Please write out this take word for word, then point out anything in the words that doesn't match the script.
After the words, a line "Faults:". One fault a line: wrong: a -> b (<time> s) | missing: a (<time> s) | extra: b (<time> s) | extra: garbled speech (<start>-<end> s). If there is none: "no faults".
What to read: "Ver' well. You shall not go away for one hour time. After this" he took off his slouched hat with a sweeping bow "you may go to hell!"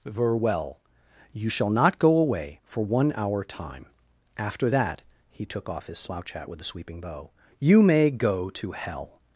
"Ver' well. You shall not go away for one hour time. After that" he took off his slouch hat with a sweeping bow "you may go to hell!"
Faults:
wrong: this -> that (4.7 s)
wrong: slouched -> slouch (6.0 s)